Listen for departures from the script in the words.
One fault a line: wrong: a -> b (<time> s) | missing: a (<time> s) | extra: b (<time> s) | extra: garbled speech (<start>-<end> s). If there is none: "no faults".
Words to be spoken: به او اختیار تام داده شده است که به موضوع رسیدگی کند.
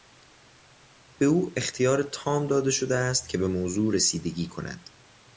no faults